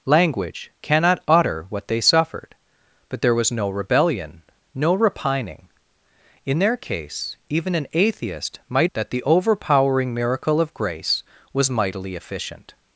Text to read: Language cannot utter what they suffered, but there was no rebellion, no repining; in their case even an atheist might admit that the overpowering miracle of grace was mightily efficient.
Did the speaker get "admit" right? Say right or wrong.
wrong